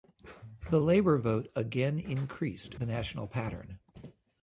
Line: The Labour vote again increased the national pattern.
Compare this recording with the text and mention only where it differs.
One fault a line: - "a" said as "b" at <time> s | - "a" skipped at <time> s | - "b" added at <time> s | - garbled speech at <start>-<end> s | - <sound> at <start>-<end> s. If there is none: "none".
none